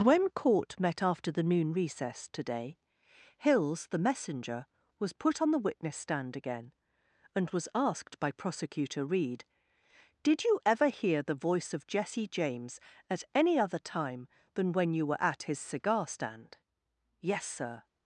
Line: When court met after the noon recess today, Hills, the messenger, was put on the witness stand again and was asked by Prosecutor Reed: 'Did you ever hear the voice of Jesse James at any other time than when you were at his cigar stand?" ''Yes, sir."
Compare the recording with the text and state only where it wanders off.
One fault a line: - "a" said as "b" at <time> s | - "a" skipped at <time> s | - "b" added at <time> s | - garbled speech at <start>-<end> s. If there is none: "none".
none